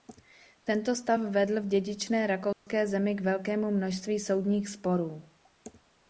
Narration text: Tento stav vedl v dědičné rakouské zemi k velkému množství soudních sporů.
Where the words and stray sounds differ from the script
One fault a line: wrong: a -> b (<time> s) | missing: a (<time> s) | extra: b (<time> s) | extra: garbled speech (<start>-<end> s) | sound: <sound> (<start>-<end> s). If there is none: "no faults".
sound: dropout (2.5-2.7 s)